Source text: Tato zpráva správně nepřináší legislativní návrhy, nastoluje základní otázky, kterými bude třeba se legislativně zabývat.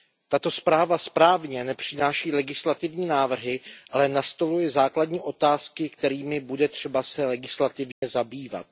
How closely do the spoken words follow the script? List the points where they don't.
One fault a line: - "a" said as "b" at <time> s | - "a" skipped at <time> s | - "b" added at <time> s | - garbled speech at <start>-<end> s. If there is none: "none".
- "ale" added at 3.9 s